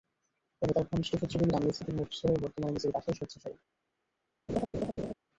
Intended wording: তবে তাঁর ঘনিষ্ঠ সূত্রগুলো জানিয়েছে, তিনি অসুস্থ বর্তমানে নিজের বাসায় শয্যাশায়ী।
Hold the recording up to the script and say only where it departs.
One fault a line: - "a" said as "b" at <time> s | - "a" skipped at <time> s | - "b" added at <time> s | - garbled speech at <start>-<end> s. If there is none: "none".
- "হয়ে" added at 2.3 s